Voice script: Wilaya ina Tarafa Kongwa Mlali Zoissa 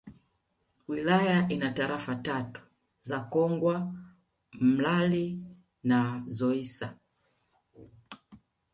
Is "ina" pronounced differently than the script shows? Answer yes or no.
no